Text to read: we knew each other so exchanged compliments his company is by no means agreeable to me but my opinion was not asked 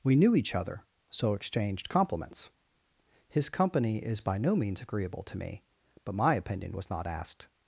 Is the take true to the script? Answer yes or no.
yes